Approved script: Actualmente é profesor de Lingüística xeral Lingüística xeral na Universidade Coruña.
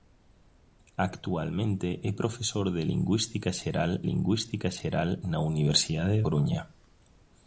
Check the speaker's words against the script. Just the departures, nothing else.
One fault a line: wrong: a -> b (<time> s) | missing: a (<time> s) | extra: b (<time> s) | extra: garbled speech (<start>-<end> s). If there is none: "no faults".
no faults